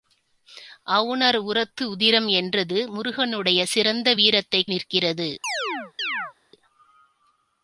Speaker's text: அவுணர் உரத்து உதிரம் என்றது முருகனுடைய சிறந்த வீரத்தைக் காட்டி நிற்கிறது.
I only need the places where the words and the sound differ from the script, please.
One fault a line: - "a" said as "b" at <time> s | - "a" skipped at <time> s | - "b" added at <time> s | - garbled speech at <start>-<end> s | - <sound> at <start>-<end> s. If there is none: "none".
- "காட்டி" skipped at 4.7 s
- chirp at 5.4-6.3 s